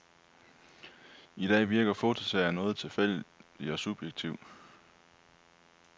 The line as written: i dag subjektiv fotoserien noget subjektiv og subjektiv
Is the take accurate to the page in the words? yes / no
no